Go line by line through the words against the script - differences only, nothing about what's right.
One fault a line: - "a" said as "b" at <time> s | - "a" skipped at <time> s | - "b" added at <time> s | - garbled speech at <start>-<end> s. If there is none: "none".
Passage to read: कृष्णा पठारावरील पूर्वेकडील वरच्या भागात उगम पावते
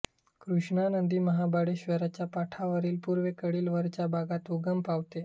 - "नदी महाबळेश्वरच्या" added at 0.9 s